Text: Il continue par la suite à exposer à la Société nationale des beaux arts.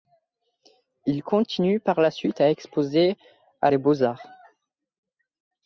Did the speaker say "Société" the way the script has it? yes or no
no